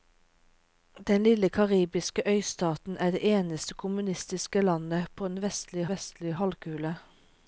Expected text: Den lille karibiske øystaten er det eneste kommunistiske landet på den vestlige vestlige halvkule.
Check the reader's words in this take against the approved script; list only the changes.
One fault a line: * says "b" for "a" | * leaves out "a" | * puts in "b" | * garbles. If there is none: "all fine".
all fine